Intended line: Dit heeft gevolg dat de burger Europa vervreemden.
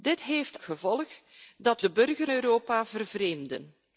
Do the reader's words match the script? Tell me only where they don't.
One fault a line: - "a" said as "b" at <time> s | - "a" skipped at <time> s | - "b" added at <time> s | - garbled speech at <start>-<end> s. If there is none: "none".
none